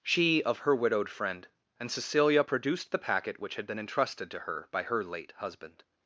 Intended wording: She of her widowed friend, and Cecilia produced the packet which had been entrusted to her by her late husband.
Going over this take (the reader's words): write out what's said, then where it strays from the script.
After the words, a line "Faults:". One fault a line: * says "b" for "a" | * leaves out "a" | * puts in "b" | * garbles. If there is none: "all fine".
She of her widowed friend, and Cecilia produced the packet which had been entrusted to her by her late husband.
Faults:
all fine